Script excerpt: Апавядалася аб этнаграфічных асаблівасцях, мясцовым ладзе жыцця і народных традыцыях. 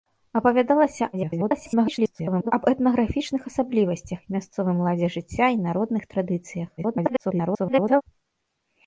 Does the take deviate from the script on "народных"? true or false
false